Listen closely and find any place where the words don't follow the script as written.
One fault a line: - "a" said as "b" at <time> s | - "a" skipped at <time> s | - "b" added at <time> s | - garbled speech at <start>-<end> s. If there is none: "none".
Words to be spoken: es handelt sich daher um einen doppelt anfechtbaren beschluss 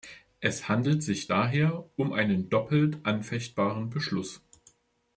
none